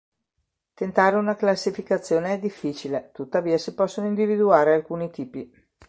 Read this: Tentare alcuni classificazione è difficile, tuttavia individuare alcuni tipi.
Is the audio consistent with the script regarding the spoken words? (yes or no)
no